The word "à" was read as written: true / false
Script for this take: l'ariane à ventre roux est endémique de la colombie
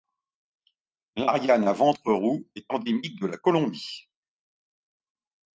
true